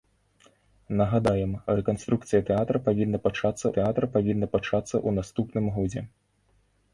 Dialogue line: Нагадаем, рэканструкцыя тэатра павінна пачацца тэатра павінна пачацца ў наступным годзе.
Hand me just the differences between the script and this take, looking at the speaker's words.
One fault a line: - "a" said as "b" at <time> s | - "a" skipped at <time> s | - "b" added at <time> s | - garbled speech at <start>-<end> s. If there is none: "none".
none